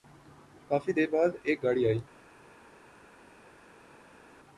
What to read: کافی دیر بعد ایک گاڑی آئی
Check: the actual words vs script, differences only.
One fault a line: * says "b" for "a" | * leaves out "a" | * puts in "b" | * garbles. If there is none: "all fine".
all fine